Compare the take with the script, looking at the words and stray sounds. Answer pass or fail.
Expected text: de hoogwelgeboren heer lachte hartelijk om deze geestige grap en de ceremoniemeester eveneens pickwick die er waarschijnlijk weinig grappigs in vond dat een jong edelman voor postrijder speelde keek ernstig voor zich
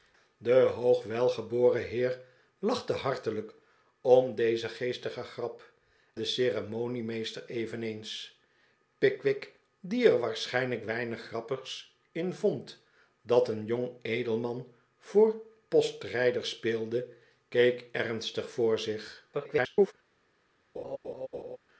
fail